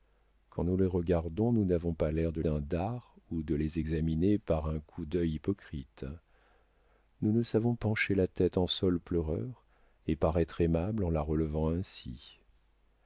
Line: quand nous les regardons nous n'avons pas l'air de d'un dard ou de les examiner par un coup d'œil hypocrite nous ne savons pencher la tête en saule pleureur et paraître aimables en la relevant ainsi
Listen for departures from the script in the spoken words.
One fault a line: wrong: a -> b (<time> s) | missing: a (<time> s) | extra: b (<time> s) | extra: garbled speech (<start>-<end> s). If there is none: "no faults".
no faults